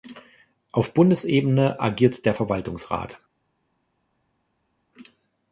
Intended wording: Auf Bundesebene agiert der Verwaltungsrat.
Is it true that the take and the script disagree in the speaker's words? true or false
false